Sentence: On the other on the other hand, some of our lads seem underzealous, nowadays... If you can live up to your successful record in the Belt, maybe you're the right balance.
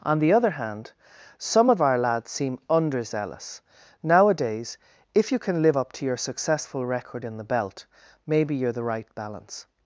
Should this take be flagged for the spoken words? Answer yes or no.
yes